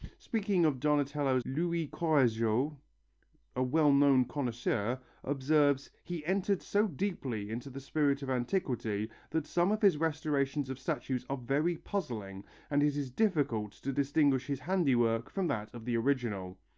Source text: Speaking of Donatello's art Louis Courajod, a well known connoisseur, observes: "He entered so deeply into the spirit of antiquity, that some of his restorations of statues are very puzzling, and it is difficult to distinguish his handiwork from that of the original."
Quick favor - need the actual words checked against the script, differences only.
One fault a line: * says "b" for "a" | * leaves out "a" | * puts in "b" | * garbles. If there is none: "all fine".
* leaves out "art"